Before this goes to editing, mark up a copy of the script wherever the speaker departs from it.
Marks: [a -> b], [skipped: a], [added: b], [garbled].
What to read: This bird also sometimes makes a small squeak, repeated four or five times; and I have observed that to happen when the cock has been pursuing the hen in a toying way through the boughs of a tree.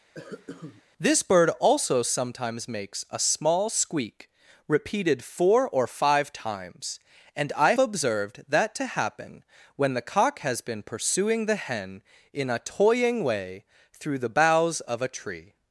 This bird also sometimes makes a small squeak, repeated four or five times; and I [skipped: have] observed that to happen when the cock has been pursuing the hen in a toying way through the boughs of a tree.